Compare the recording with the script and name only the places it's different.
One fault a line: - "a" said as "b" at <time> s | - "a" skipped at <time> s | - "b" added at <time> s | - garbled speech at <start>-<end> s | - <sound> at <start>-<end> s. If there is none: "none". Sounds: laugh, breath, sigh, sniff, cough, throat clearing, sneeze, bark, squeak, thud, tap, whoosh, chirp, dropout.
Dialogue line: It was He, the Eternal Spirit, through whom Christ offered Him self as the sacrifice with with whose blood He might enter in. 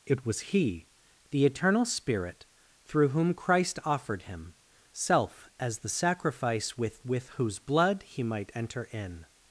none